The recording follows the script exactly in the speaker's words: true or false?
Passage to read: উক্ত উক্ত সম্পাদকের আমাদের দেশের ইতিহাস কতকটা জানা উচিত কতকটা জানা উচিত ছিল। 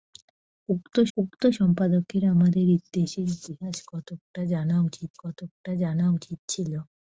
true